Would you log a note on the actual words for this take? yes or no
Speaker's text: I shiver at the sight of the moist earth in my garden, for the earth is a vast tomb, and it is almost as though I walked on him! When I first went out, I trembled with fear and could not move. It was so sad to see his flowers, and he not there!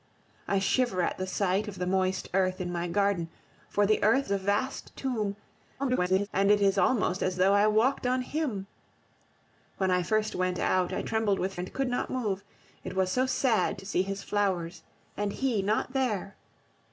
yes